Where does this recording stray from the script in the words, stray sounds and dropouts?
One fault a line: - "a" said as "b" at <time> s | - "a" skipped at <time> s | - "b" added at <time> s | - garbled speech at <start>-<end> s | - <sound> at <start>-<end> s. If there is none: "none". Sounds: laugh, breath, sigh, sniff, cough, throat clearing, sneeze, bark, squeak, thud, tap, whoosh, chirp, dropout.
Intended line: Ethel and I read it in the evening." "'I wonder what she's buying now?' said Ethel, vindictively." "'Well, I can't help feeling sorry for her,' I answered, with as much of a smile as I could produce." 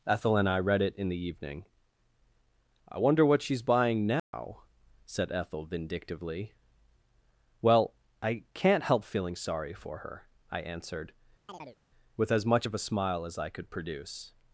- dropout at 4.2-4.3 s
- chirp at 11.5-11.8 s